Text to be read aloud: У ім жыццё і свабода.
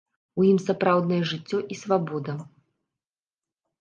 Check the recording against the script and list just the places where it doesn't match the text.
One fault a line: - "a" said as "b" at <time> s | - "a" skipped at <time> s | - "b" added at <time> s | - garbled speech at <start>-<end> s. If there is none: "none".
- "сапраўднае" added at 0.7 s